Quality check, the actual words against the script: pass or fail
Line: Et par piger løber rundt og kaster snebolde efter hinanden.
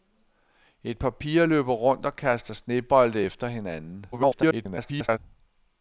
fail